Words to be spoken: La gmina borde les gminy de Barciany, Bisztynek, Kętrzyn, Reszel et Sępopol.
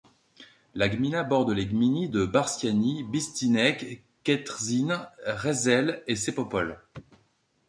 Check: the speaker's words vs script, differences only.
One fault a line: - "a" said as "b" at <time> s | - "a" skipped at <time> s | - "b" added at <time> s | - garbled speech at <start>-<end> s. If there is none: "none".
none